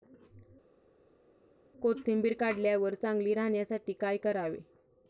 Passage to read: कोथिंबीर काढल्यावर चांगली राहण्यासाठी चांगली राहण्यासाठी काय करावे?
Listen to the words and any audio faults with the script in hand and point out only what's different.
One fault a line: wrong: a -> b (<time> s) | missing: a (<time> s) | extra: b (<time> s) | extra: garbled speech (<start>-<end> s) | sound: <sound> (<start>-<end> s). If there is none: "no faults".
missing: चांगली राहण्यासाठी (3.9 s)